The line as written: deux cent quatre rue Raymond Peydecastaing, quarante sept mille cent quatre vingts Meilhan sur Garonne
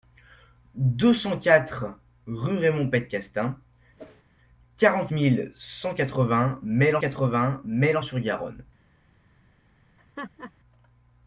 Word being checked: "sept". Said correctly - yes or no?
no